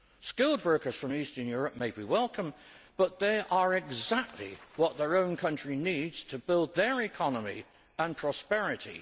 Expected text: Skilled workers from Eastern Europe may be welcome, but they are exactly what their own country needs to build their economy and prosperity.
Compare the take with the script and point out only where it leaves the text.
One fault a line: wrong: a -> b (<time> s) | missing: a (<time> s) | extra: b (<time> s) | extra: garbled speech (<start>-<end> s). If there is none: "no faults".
no faults